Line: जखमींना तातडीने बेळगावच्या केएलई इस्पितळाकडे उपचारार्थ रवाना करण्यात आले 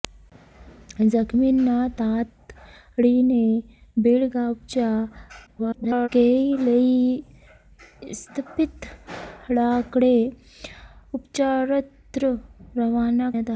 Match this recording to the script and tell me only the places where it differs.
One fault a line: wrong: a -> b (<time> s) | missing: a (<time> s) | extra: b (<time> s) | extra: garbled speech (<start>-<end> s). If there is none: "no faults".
extra: garbled speech (5.5-6.1 s)
missing: करण्यात (13.3 s)